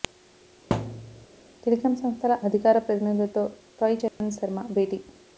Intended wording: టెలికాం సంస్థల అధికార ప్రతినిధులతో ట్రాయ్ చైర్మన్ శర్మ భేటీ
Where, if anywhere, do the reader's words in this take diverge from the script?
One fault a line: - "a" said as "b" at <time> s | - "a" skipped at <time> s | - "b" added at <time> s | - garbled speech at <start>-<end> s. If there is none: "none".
none